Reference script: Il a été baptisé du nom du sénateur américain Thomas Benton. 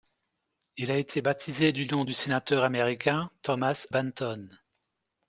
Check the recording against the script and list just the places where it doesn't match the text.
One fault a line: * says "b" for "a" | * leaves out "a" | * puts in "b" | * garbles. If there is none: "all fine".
all fine